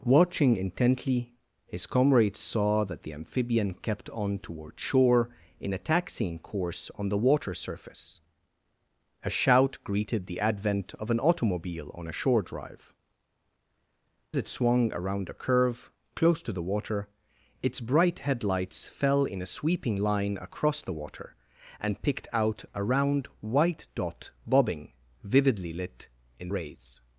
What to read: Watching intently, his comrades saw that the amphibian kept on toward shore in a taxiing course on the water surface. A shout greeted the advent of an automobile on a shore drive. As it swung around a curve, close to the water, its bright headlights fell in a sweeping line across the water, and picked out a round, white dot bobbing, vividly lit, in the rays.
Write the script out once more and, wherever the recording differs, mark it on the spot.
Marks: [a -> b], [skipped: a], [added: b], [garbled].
Watching intently, his comrades saw that the amphibian kept on toward shore in a taxiing course on the water surface. A shout greeted the advent of an automobile on a shore drive. [skipped: As] it swung around a curve, close to the water, its bright headlights fell in a sweeping line across the water, and picked out a round, white dot bobbing, vividly lit, in [skipped: the] rays.